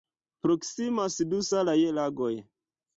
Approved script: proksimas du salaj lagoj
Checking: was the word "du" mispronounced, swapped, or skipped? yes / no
no